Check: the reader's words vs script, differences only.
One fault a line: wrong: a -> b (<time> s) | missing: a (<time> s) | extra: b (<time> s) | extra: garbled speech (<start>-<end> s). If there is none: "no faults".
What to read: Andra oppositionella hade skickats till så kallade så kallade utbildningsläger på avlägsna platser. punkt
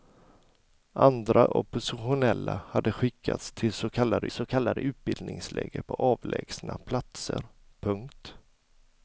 no faults